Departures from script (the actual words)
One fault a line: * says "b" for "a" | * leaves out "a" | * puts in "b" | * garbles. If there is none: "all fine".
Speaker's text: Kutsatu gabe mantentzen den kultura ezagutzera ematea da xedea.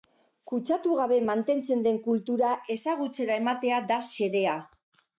all fine